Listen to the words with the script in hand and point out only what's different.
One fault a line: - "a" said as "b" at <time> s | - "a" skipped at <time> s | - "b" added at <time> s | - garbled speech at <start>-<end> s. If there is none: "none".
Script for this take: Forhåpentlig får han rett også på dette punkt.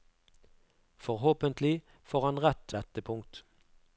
- "også på" skipped at 2.7 s